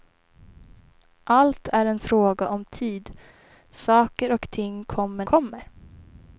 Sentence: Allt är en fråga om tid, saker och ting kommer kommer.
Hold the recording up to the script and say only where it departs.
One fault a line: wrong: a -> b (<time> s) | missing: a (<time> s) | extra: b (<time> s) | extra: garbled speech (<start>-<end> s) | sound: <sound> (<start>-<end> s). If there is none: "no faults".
no faults